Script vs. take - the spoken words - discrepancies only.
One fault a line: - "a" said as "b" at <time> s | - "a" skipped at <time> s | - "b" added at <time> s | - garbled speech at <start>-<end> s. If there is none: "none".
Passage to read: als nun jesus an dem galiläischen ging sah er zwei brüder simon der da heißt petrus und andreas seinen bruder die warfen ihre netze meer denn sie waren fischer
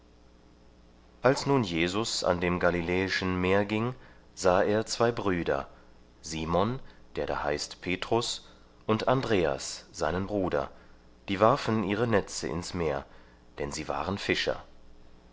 - "meer" added at 3.4 s
- "ins" added at 12.4 s